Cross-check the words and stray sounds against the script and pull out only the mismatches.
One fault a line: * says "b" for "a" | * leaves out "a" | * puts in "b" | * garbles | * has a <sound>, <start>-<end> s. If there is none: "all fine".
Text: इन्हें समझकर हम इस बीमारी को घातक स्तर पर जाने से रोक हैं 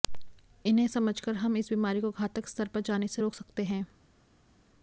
* puts in "सकते"